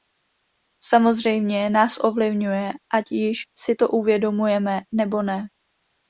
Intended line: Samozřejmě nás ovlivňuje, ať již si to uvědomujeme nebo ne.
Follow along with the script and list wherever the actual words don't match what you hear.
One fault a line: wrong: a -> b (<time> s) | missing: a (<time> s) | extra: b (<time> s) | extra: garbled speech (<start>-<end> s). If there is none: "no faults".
no faults